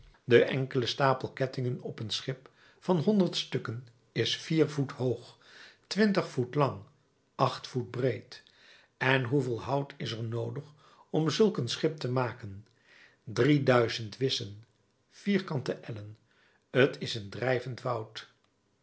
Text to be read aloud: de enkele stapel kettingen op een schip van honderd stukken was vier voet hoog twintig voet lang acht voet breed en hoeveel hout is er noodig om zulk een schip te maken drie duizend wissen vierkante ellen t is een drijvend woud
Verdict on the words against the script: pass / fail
fail